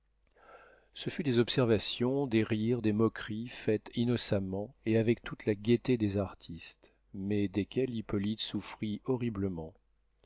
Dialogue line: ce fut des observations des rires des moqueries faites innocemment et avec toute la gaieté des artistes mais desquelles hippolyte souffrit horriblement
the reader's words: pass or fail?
pass